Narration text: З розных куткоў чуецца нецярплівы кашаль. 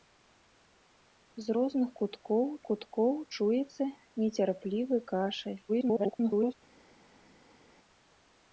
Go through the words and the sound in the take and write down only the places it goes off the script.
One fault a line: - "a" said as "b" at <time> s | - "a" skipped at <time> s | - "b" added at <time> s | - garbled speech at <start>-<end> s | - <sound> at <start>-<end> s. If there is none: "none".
- "куткоў" added at 2.7 s
- garbled speech at 5.7-6.5 s